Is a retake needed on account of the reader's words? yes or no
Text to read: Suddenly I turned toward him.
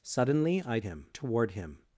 yes